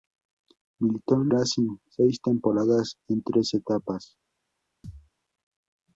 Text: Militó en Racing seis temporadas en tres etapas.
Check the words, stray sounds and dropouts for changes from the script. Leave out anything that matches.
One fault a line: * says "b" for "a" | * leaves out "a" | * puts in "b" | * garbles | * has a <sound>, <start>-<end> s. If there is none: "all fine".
* has a thud, 4.8-5.1 s